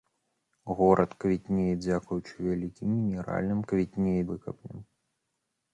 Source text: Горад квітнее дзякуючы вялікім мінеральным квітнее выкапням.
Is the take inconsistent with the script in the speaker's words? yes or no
no